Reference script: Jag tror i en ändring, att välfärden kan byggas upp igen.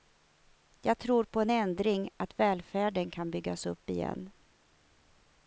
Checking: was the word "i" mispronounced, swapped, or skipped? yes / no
yes